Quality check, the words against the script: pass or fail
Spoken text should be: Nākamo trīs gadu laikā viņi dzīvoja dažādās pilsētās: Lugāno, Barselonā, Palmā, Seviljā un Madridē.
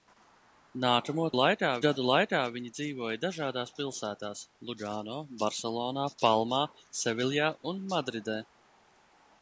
fail